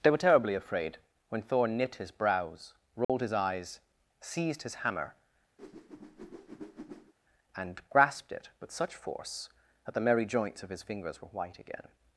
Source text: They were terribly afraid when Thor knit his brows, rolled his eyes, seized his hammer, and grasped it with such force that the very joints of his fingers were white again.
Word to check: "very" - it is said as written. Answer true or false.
false